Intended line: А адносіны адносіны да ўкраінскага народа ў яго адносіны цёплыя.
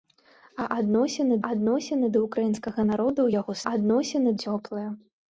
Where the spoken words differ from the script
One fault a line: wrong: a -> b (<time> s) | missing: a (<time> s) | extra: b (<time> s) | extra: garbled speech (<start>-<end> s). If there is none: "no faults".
no faults